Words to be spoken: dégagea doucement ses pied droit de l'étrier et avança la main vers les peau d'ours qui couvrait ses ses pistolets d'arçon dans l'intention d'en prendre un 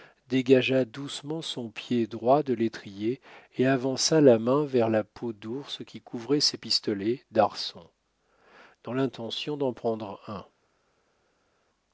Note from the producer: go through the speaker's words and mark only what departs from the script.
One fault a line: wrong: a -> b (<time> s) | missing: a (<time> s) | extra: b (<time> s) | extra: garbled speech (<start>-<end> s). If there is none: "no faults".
wrong: ses -> son (1.4 s)
wrong: les -> la (4.9 s)
missing: ses (6.6 s)